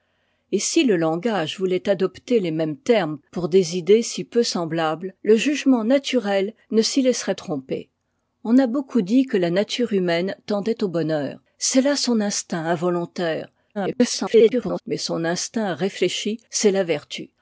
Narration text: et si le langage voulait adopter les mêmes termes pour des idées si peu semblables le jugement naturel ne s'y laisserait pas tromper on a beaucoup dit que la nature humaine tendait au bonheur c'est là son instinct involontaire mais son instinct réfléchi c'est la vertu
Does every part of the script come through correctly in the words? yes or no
no